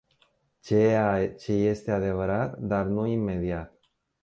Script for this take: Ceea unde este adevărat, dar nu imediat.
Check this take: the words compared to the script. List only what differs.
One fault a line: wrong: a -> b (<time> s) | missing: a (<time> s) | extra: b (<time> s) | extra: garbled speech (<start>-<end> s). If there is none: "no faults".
wrong: unde -> ce (1.3 s)